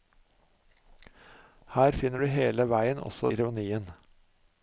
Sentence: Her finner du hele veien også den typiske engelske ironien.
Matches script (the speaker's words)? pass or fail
fail